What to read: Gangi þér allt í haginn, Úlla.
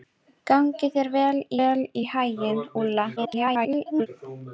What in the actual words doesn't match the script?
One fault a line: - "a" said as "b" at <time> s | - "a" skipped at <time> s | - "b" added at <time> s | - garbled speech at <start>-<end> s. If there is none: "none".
- "allt" added at 1.7 s
- garbled speech at 3.2-4.1 s